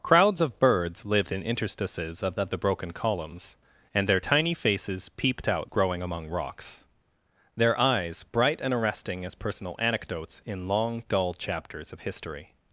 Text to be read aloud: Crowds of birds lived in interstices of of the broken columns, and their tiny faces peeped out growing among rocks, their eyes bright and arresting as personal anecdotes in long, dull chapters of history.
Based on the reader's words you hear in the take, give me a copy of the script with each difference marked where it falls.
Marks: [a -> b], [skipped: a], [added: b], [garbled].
Crowds of birds lived in interstices of of the broken columns, and their tiny faces peeped out growing among rocks, their eyes bright and arresting as personal anecdotes in long, dull chapters of history.